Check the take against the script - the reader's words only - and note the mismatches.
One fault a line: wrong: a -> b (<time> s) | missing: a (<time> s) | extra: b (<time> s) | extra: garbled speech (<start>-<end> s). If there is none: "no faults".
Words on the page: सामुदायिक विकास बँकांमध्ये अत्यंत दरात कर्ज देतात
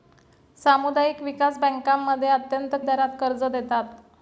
no faults